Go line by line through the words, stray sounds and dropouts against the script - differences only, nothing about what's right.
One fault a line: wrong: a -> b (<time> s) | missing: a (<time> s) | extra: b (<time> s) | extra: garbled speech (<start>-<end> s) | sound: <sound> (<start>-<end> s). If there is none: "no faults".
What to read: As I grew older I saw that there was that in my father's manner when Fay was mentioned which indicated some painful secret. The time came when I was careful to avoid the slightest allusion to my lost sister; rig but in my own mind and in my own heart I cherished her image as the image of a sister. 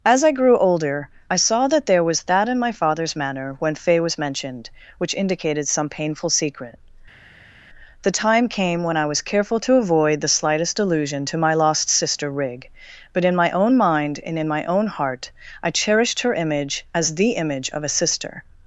no faults